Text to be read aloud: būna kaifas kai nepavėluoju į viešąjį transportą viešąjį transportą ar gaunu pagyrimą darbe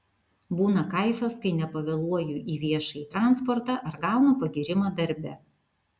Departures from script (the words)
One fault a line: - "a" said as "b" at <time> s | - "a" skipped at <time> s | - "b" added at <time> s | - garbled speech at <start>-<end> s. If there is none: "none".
- "viešąjį transportą" skipped at 3.8 s